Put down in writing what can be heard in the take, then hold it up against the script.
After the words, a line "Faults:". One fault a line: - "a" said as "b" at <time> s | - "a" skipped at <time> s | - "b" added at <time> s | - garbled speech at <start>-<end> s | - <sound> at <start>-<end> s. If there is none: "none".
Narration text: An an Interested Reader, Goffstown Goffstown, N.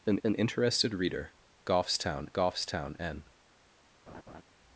An an Interested Reader, Goffstown Goffstown, N.
Faults:
- laugh at 4.1-4.4 s